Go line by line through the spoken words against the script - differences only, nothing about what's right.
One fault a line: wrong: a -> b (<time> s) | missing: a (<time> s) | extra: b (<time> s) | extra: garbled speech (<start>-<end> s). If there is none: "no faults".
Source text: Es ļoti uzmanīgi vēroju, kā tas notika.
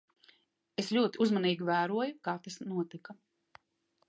no faults